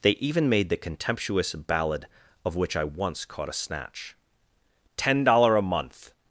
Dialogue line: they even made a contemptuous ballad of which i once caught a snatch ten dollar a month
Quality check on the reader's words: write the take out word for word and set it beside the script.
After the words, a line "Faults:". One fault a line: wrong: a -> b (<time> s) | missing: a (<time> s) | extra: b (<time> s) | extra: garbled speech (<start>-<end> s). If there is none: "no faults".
they even made the contemptuous ballad of which i once caught a snatch ten dollar a month
Faults:
wrong: a -> the (0.7 s)